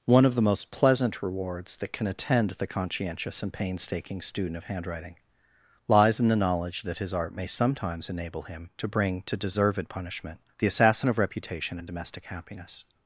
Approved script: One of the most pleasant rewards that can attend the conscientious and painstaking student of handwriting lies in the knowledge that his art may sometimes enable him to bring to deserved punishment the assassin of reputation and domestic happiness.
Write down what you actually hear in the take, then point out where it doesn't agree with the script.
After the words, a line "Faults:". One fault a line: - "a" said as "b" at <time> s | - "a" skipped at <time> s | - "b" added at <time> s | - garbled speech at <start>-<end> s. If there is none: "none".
One of the most pleasant rewards that can attend the conscientious and painstaking student of handwriting lies in the knowledge that his art may sometimes enable him to bring to deserved punishment the assassin of reputation and domestic happiness.
Faults:
none